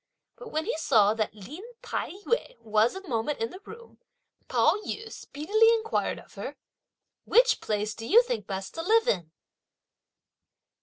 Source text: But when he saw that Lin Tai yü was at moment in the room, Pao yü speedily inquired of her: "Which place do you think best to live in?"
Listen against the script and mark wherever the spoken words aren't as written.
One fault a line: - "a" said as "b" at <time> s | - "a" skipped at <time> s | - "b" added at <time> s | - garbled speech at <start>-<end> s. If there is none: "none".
none